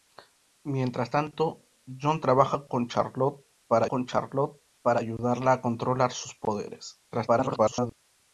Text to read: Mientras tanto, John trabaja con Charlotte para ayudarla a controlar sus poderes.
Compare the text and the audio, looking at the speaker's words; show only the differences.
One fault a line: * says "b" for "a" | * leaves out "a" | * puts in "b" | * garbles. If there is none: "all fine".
* puts in "con Charlotte para"
* garbles